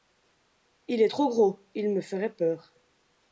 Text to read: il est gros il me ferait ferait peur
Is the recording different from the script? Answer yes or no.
yes